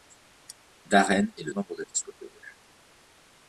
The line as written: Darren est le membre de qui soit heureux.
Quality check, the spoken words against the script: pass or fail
pass